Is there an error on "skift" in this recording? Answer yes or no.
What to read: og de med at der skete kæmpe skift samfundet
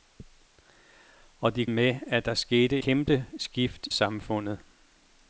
no